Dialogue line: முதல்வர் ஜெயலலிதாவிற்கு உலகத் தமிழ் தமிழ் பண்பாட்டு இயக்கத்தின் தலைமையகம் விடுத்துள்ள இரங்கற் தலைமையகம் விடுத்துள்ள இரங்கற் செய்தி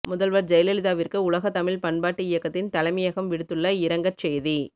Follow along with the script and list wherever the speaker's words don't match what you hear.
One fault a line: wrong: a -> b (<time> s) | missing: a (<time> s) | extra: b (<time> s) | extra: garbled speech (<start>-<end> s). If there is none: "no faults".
missing: தமிழ் (1.8 s)
missing: தலைமையகம் விடுத்துள்ள இரங்கற் (4.2 s)